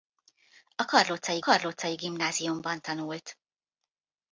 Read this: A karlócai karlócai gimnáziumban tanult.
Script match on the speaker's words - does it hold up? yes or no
yes